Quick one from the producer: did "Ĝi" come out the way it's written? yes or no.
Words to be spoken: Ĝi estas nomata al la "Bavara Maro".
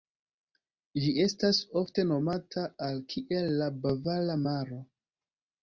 yes